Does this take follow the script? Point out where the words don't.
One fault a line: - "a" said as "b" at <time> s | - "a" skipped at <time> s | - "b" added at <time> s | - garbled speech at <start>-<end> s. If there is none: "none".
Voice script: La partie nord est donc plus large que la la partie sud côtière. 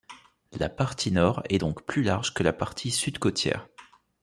- "la" skipped at 2.5 s